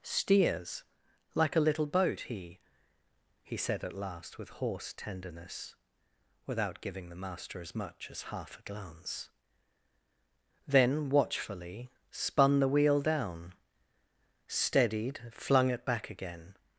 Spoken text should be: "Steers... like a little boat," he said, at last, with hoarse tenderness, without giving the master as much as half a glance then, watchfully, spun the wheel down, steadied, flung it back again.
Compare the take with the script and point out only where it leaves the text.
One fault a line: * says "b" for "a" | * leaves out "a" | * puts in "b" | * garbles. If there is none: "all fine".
* puts in "he"